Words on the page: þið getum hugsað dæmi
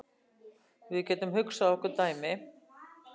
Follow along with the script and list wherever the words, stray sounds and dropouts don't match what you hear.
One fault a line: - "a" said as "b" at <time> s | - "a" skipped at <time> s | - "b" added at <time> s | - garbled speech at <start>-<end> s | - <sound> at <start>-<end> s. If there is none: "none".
- "þið" said as "við" at 0.9 s
- "okkur" added at 1.8 s